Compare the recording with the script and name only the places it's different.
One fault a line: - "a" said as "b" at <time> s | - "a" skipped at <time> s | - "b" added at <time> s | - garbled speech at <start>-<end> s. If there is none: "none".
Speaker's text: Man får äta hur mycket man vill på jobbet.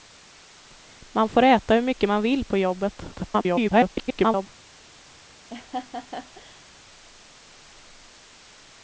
- garbled speech at 3.1-4.5 s